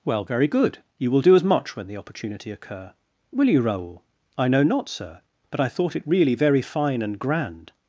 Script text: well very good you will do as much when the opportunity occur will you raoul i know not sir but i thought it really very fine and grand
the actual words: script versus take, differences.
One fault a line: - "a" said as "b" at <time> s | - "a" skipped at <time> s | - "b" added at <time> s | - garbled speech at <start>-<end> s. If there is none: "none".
none